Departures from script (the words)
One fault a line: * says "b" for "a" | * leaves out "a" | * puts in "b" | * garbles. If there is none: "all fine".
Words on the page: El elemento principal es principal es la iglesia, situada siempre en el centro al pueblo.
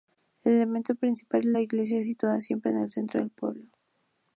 * leaves out "principal es"
* says "del" for "al"